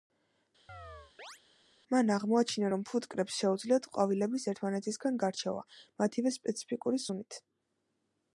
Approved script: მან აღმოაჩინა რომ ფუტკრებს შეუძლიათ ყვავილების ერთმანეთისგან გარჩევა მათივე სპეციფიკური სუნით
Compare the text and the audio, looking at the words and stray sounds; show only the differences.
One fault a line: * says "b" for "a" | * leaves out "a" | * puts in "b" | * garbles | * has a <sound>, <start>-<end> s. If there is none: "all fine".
* has a chirp, 0.7-1.4 s